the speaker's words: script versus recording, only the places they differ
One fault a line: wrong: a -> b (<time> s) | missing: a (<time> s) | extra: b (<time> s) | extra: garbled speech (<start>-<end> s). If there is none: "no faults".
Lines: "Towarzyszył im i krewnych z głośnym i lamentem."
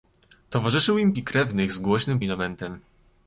no faults